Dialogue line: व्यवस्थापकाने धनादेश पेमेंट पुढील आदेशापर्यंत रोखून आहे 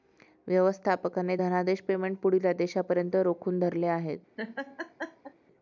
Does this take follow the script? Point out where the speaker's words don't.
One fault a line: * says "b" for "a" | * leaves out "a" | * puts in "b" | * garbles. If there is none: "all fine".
* puts in "धरले"